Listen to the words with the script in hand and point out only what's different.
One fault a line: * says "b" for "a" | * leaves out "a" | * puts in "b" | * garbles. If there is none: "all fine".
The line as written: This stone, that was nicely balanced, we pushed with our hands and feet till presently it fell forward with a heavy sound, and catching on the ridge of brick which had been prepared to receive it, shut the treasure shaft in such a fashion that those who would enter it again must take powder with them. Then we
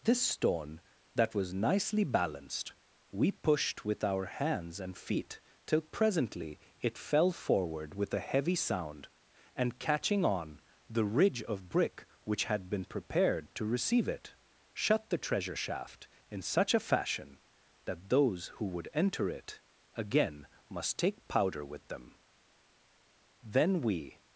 all fine